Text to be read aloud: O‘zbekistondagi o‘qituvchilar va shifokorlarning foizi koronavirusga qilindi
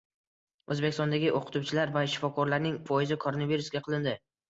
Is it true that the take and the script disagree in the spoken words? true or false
false